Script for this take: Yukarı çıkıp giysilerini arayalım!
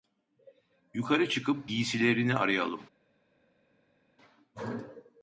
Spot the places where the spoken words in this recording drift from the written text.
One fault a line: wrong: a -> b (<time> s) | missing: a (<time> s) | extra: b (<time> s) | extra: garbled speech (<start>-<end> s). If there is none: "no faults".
no faults